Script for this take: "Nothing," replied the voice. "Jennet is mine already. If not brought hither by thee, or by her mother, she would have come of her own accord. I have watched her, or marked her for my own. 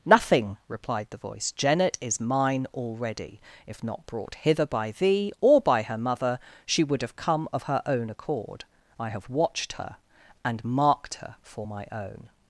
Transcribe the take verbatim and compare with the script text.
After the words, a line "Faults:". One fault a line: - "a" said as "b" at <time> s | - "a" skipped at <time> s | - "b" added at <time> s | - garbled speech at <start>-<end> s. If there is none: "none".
"Nothing," replied the voice. "Jennet is mine already. If not brought hither by thee, or by her mother, she would have come of her own accord. I have watched her, and marked her for my own.
Faults:
- "or" said as "and" at 10.4 s